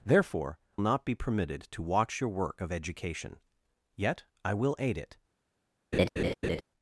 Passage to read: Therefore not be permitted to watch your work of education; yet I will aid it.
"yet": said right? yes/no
yes